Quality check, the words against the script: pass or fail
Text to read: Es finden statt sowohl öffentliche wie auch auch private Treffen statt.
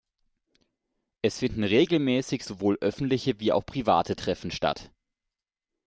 fail